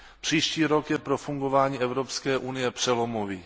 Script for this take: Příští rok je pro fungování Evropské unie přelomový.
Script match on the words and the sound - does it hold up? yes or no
yes